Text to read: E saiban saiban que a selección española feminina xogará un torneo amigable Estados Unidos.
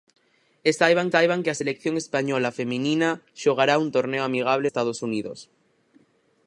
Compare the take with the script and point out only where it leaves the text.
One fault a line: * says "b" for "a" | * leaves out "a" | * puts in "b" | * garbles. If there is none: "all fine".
all fine